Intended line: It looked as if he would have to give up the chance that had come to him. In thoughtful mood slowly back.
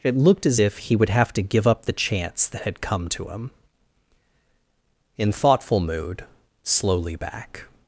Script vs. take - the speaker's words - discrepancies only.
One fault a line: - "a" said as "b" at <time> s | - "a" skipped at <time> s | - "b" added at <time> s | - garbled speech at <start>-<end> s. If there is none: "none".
none